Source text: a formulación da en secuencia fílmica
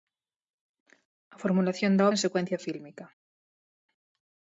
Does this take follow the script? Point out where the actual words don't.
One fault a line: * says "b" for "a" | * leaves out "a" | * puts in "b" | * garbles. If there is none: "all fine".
all fine